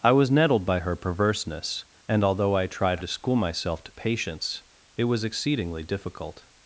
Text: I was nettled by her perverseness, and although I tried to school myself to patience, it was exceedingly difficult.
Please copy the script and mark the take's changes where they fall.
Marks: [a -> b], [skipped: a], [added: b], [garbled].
I was nettled by her perverseness, and although I tried to school myself to patience, it was exceedingly difficult.